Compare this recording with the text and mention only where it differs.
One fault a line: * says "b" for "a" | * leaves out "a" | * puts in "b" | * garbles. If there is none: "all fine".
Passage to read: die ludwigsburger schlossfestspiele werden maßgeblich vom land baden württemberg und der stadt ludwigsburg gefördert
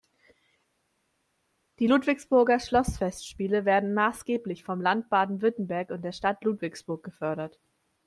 all fine